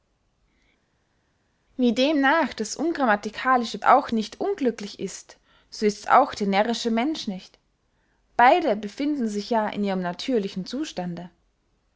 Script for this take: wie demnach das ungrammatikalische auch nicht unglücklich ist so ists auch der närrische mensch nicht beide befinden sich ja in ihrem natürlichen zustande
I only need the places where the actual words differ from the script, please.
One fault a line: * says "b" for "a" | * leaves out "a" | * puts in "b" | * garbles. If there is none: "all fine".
all fine